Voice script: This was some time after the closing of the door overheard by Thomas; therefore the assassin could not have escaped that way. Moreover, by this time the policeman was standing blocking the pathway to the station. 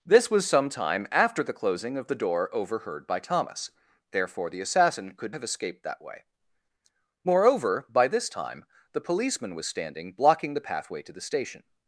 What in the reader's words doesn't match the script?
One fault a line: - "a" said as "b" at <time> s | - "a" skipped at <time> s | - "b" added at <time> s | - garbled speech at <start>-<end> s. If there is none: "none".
- "not" skipped at 5.3 s